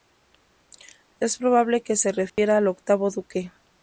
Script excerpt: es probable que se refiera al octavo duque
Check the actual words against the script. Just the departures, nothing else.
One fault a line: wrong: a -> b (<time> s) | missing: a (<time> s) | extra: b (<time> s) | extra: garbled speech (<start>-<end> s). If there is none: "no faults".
no faults